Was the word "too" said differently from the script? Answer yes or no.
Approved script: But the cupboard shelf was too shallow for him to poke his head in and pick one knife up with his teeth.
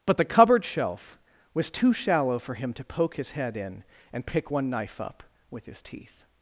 no